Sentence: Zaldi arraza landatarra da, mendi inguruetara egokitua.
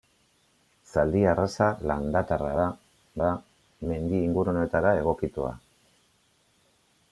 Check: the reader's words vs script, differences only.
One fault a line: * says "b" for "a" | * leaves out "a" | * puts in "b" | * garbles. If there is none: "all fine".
* puts in "da"